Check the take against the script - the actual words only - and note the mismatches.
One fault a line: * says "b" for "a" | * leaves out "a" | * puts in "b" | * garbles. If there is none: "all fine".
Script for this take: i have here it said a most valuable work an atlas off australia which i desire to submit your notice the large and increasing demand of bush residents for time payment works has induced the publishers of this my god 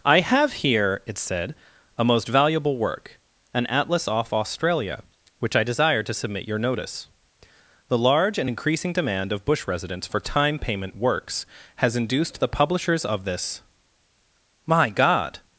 all fine